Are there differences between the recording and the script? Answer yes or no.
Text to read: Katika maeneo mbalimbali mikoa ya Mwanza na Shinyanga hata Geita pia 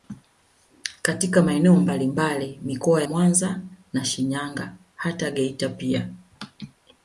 yes